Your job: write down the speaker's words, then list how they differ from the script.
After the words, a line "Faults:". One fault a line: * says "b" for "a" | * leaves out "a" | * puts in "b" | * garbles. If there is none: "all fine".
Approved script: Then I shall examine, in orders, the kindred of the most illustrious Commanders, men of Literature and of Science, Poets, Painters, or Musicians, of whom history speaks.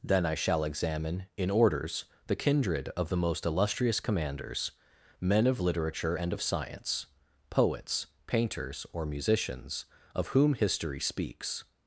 Then I shall examine, in orders, the kindred of the most illustrious Commanders, men of Literature and of Science, Poets, Painters, or Musicians, of whom history speaks.
Faults:
all fine